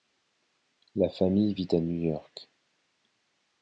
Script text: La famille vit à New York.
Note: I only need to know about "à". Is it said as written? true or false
true